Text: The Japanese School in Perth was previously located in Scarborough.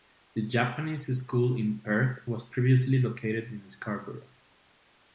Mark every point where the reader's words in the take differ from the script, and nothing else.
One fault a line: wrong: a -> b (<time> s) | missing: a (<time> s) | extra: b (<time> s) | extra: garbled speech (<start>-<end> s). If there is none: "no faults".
no faults